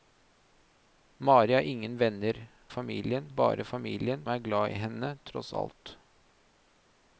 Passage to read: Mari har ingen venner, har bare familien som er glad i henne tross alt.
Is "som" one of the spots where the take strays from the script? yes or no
yes